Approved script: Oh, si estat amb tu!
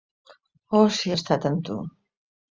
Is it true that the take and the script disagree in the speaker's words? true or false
false